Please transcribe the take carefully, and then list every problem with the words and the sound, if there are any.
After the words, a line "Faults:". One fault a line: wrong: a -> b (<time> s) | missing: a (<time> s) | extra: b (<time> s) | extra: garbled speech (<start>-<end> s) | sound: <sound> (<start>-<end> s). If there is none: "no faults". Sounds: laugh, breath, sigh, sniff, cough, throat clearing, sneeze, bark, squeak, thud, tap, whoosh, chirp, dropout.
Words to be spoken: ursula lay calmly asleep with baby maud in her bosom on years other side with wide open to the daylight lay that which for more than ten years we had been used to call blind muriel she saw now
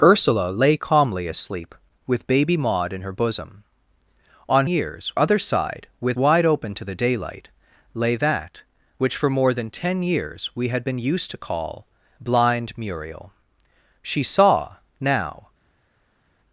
ursula lay calmly asleep with baby maud in her bosom on years other side with wide open to the daylight lay that which for more than ten years we had been used to call blind muriel she saw now
Faults:
no faults